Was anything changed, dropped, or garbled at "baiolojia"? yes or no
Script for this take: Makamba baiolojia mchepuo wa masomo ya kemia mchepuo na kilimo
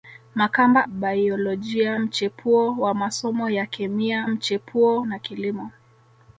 no